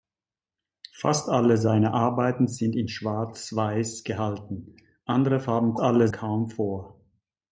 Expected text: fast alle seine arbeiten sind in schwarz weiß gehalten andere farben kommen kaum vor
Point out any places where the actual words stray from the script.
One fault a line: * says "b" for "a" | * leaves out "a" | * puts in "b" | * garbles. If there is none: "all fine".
* says "alle" for "kommen"